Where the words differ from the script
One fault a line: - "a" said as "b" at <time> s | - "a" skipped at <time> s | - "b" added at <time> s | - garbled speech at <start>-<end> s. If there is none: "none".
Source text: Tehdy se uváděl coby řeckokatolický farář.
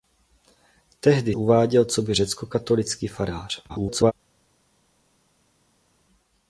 - "se" skipped at 1.4 s
- garbled speech at 3.7-4.1 s